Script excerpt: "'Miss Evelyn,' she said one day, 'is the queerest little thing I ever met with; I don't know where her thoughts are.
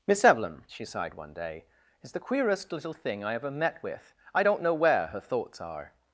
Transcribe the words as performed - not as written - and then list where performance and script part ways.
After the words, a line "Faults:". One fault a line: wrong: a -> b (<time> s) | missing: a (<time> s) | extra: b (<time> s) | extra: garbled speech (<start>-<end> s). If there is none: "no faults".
"'Miss Evelyn,' she sighed one day, 'is the queerest little thing I ever met with; I don't know where her thoughts are.
Faults:
wrong: said -> sighed (0.8 s)